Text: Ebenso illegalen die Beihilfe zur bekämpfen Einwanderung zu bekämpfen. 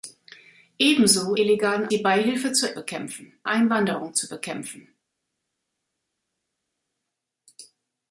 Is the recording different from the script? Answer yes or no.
no